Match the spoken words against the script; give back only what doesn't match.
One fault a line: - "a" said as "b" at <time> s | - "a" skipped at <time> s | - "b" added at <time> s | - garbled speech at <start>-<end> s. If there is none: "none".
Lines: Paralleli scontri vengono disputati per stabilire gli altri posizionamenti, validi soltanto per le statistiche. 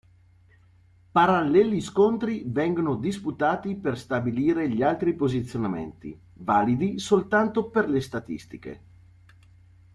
none